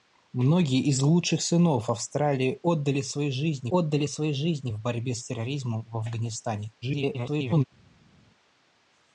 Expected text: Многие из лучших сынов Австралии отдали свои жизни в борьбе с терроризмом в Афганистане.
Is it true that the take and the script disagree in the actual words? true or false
true